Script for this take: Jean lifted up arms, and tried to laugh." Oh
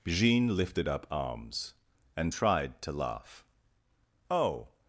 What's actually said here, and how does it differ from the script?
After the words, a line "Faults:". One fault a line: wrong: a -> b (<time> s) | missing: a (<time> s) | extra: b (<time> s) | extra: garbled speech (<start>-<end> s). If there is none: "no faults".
Jean lifted up arms, and tried to laugh." Oh
Faults:
no faults